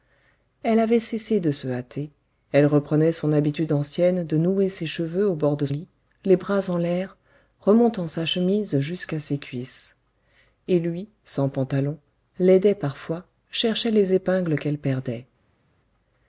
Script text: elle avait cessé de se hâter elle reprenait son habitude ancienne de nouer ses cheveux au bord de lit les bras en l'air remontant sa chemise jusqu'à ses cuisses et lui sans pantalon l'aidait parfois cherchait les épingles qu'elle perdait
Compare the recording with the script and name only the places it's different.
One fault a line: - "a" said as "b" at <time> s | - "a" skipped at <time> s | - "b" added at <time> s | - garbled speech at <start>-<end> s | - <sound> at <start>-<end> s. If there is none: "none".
none